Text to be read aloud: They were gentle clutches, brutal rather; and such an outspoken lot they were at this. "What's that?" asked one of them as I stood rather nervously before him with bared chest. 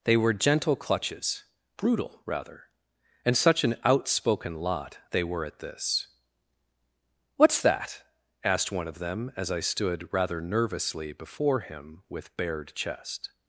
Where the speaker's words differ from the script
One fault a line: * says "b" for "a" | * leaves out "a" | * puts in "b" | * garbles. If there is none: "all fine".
all fine